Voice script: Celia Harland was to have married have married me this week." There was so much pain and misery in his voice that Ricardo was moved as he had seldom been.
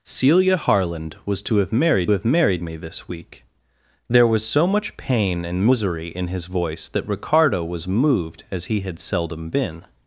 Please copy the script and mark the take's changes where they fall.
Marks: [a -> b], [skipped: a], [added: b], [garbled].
Celia Harland was to have married have married me this week." There was so much pain and misery in his voice that Ricardo was moved as he had seldom been.